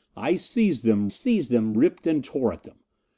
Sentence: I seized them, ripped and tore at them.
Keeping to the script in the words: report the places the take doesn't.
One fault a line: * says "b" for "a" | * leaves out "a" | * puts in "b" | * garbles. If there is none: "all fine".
* puts in "seized them"